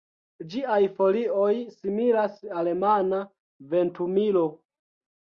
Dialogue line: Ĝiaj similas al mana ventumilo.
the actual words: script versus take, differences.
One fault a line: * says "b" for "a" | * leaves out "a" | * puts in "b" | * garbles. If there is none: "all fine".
* puts in "folioj"